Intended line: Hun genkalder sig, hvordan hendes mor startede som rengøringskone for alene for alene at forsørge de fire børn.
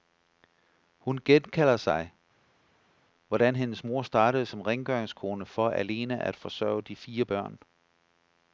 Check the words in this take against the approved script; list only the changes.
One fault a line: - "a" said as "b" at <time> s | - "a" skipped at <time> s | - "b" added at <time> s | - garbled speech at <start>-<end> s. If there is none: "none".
- "for alene" skipped at 6.2 s